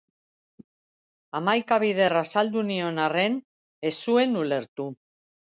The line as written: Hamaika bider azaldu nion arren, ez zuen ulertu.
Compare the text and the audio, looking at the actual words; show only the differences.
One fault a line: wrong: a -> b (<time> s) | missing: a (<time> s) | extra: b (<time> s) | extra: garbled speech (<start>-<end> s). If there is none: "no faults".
no faults